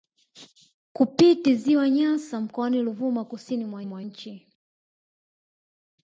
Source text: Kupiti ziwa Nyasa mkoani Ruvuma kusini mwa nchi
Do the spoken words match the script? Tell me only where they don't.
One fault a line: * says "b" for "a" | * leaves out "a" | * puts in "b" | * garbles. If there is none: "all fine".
* puts in "mwa"